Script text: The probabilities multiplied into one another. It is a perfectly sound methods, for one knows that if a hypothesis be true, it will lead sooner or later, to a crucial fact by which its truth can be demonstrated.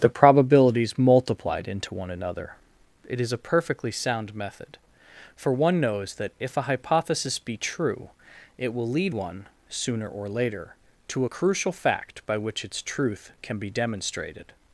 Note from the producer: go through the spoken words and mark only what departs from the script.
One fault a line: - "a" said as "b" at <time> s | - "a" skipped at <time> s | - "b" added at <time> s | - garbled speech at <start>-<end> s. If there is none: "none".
- "methods" said as "method" at 4.3 s
- "one" added at 9.1 s